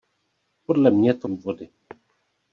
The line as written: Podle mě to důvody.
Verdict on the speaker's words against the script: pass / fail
pass